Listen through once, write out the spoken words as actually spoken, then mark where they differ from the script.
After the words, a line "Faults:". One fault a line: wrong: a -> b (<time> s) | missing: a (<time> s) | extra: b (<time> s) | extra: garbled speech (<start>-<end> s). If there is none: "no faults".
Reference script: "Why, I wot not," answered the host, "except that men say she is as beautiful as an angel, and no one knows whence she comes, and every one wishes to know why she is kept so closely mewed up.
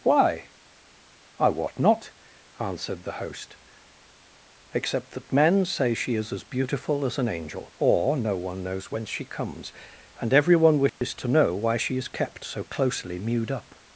"Why, I wot not," answered the host, "except that men say she is as beautiful as an angel, or no one knows whence she comes, and every one wishes to know why she is kept so closely mewed up.
Faults:
wrong: and -> or (7.8 s)